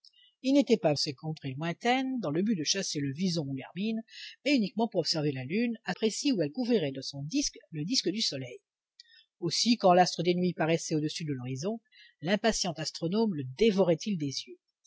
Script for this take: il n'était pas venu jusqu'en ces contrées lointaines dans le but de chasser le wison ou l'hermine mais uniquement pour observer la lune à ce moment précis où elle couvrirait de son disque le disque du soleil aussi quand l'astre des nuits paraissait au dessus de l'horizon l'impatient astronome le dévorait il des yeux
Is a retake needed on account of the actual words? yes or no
yes